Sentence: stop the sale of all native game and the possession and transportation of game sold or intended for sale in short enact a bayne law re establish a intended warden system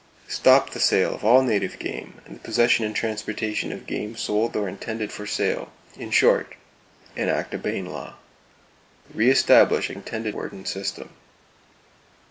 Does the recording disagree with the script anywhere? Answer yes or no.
no